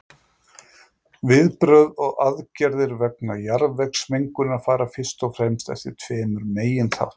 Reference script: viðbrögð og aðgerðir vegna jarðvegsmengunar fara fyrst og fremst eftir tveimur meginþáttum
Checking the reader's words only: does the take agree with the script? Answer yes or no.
yes